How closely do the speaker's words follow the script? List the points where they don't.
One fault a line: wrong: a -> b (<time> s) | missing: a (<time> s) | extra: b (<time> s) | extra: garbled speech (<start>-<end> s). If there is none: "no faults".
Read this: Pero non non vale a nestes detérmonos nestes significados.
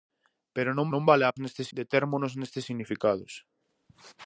no faults